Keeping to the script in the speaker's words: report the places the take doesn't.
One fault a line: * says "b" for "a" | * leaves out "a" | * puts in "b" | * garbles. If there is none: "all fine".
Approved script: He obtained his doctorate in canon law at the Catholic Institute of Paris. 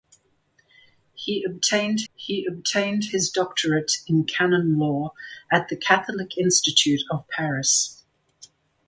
* puts in "he obtained"